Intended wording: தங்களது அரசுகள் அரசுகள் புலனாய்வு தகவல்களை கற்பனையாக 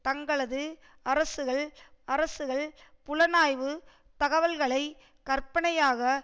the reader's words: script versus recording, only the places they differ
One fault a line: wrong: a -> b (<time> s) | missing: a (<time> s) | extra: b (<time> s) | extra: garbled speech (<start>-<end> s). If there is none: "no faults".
no faults